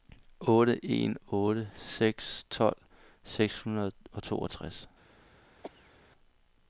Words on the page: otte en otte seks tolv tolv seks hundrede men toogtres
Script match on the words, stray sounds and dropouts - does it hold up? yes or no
no